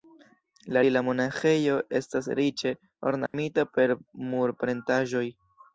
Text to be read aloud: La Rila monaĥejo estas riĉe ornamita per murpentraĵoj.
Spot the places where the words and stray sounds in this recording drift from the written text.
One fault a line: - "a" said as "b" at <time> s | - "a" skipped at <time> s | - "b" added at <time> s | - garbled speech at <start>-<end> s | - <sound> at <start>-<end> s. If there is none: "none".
- dropout at 3.3-3.3 s